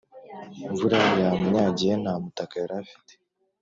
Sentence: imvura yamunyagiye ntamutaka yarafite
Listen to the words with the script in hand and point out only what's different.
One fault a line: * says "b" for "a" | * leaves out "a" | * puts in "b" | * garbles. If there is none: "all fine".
all fine